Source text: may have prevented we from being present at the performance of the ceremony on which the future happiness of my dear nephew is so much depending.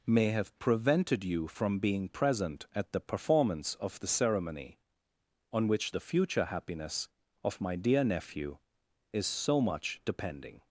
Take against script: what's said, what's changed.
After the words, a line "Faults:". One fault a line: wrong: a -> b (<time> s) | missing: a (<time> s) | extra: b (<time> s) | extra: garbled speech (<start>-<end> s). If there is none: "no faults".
may have prevented you from being present at the performance of the ceremony on which the future happiness of my dear nephew is so much depending.
Faults:
wrong: we -> you (1.2 s)